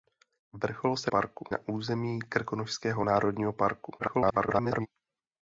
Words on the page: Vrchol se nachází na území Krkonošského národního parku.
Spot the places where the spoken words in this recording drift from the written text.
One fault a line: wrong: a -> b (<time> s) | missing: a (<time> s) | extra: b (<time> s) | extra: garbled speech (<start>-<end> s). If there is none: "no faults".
wrong: nachází -> parku (1.1 s)
extra: garbled speech (4.0-4.9 s)